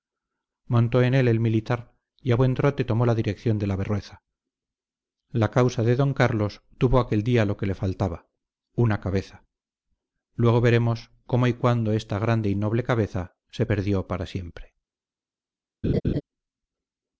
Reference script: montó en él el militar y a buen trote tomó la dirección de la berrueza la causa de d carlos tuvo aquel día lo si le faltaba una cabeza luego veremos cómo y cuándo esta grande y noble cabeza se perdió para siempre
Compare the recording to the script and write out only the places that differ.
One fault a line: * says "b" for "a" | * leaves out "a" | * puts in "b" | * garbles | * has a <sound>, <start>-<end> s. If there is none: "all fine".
* says "que" for "si"
* has a laugh, 15.8-16.2 s